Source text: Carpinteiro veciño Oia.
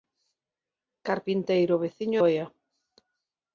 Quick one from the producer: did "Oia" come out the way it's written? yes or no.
yes